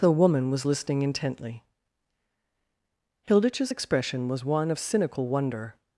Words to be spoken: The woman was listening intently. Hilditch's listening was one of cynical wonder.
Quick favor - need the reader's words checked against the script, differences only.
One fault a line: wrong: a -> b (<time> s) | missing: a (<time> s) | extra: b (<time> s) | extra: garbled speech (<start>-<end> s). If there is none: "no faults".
wrong: listening -> expression (3.7 s)